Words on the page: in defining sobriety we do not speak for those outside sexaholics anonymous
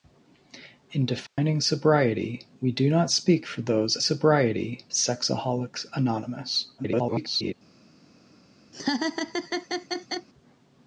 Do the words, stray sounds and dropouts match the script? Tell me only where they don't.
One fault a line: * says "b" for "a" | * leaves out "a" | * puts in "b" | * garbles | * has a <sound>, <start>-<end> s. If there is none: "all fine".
* has a dropout, 1.3-1.4 s
* says "sobriety" for "outside"
* garbles
* has a laugh, 8.7-10.3 s